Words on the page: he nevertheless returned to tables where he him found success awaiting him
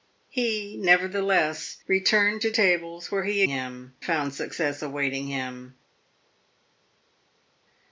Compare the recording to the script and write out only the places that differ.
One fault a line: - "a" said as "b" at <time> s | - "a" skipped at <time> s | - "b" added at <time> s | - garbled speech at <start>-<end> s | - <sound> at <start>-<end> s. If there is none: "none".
none